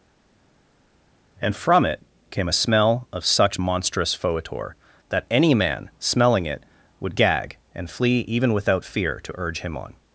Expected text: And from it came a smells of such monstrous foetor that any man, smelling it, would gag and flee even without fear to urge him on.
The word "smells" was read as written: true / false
false